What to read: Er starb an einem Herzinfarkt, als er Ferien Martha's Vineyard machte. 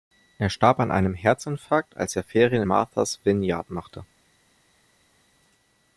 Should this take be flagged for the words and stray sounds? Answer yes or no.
no